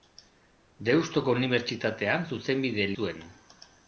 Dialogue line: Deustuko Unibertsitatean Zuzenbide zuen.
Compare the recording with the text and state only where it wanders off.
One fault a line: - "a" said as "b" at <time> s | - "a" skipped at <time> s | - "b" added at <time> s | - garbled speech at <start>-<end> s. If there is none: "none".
none